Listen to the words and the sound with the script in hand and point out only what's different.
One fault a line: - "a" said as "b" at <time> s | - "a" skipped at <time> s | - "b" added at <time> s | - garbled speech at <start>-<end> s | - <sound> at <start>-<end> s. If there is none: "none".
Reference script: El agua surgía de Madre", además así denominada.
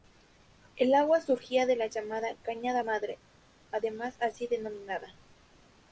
- "la llamada Cañada" added at 1.8 s